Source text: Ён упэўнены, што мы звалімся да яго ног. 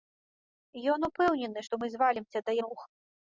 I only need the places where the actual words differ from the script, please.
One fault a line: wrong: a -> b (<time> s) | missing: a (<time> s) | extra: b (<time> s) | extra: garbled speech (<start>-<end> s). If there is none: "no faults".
missing: яго (2.6 s)